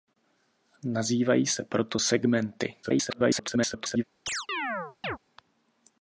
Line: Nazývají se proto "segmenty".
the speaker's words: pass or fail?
fail